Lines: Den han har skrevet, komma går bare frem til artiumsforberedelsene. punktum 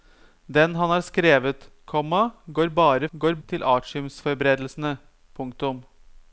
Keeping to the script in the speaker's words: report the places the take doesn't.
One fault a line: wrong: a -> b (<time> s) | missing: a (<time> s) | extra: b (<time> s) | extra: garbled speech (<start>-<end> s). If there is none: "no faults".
wrong: frem -> går (3.1 s)